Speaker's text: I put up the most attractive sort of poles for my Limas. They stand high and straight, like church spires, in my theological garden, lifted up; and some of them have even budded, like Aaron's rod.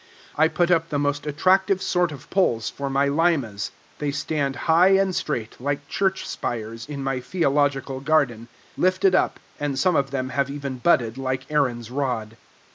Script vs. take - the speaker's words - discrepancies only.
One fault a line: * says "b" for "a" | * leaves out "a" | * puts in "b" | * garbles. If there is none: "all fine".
all fine